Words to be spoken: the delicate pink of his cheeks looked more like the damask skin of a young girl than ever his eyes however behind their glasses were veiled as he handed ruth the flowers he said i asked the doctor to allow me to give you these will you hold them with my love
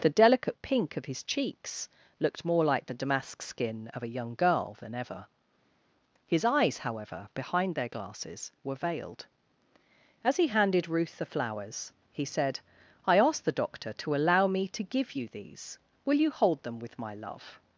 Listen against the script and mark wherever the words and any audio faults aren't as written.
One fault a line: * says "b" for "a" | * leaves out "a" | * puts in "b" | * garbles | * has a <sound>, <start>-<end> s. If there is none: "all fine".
all fine